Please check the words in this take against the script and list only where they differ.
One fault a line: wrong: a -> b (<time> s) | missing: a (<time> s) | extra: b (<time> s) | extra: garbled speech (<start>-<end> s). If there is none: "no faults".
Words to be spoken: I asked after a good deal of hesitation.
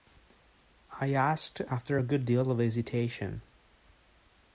no faults